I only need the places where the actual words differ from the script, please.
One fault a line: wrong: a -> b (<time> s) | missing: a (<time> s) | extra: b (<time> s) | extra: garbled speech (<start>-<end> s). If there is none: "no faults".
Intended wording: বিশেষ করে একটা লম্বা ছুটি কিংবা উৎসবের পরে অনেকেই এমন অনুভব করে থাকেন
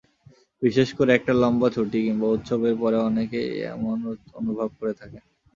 no faults